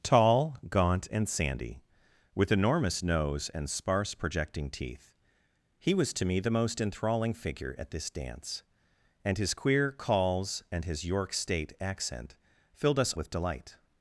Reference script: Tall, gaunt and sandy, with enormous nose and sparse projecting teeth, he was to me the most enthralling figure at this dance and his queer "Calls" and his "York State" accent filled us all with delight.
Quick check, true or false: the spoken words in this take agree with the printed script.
false